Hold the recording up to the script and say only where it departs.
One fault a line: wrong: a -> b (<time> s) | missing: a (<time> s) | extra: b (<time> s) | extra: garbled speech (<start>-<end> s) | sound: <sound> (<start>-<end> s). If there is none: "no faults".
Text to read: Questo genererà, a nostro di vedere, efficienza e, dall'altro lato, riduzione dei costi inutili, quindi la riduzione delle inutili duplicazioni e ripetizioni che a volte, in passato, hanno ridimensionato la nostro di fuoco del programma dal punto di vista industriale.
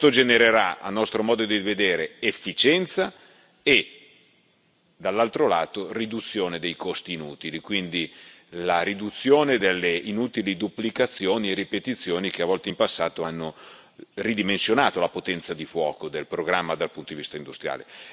extra: modo (1.2 s)
wrong: nostro -> potenza (15.1 s)